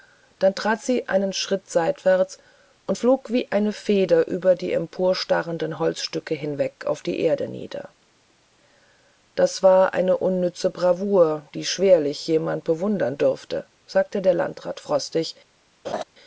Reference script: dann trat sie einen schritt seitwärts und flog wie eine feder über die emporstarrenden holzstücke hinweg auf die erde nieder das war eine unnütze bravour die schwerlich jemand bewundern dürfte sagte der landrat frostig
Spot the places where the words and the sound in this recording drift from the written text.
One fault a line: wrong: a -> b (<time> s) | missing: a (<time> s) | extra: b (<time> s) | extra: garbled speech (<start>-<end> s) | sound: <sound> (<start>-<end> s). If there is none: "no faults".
sound: laugh (15.8-16.0 s)